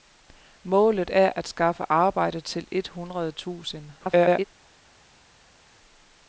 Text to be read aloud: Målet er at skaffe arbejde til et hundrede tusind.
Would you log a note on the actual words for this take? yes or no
yes